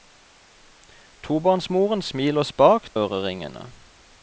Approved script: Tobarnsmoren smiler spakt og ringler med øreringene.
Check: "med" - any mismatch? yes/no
yes